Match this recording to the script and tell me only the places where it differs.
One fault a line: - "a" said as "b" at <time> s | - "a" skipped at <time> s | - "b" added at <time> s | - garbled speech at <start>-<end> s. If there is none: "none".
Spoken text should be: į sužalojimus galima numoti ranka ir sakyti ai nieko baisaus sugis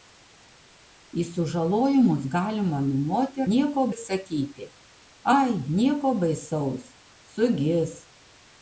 - "ranka" said as "nieko" at 3.5 s